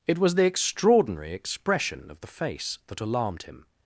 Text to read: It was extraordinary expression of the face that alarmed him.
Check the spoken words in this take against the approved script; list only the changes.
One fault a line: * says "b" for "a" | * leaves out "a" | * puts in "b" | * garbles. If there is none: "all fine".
* puts in "the"